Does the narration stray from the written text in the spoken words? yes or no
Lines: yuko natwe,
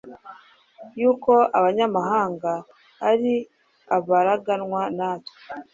yes